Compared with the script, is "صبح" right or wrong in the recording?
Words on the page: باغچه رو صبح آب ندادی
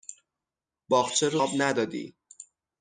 wrong